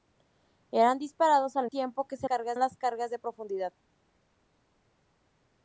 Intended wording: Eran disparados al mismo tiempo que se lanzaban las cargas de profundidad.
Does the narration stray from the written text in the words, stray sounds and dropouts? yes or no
yes